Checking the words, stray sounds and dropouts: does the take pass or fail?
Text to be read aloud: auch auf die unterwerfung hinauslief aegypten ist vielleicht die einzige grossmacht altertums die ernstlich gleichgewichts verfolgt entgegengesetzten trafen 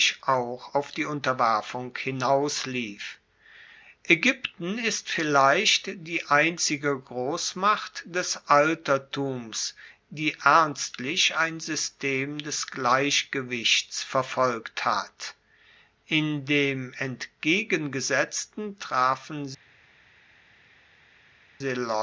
fail